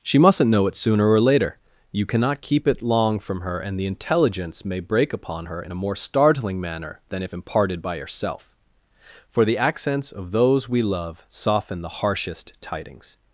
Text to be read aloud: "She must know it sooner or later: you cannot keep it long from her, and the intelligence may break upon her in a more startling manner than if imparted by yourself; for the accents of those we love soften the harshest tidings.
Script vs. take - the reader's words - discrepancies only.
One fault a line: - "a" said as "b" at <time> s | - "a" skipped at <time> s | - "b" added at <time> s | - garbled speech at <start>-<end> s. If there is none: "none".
- "must" said as "mustn't" at 0.2 s